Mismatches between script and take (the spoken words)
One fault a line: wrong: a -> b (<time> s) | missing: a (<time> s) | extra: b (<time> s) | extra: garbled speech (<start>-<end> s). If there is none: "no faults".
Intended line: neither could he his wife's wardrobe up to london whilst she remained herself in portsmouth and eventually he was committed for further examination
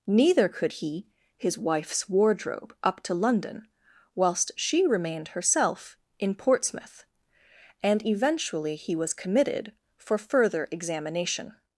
no faults